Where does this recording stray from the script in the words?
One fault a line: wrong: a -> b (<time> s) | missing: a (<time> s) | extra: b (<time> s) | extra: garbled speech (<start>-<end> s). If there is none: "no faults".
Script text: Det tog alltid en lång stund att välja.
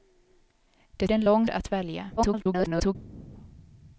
missing: tog alltid (1.1 s)
missing: stund (1.5 s)
extra: garbled speech (2.2-3.0 s)